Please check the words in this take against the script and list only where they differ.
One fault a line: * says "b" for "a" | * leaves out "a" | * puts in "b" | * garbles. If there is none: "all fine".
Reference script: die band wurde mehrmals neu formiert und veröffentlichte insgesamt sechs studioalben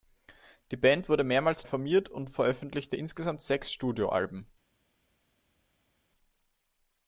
* leaves out "neu"